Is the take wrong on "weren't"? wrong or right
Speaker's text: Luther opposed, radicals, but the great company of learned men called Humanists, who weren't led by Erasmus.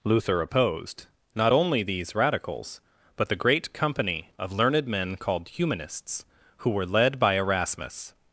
wrong